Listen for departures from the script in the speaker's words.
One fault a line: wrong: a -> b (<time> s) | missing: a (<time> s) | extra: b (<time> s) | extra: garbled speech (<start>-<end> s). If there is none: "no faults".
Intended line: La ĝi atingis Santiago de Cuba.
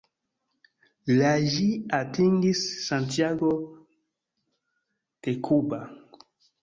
no faults